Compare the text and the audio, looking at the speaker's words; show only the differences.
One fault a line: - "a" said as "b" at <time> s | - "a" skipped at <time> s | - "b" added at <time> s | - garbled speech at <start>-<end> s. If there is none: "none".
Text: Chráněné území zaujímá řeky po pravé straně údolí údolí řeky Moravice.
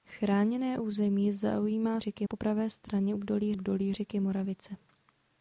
none